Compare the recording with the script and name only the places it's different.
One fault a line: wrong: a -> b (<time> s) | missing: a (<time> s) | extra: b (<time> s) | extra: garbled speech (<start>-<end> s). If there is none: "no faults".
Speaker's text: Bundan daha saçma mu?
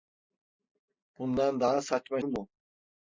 no faults